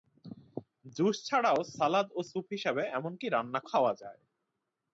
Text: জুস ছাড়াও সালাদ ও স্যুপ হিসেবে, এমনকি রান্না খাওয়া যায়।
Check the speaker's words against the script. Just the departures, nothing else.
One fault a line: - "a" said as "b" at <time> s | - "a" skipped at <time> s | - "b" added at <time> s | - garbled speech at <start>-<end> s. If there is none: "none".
none